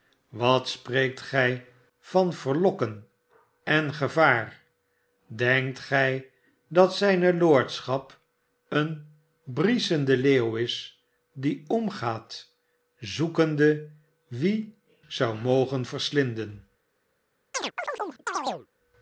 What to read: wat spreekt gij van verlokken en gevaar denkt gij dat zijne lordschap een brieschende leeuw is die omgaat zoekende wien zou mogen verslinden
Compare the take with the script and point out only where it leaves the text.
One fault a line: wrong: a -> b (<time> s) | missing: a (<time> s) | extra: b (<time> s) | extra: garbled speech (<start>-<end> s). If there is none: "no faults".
no faults